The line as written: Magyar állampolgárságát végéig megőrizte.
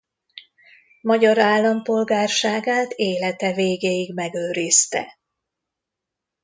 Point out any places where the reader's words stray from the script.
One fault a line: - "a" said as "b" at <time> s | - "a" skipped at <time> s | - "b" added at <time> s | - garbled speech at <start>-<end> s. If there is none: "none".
- "élete" added at 2.9 s